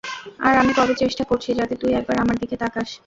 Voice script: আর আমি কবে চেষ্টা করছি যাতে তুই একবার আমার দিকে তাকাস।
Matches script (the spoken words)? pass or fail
pass